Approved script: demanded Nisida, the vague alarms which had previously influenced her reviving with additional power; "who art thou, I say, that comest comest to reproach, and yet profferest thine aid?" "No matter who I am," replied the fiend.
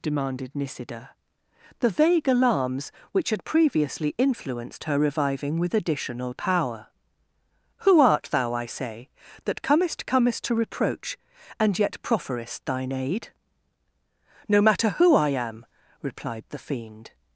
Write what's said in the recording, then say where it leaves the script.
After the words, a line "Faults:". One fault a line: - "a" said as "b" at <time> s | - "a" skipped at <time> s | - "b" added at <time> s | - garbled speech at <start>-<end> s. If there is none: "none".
demanded Nisida, the vague alarms which had previously influenced her reviving with additional power; "who art thou, I say, that comest comest to reproach, and yet profferest thine aid?" "No matter who I am," replied the fiend.
Faults:
none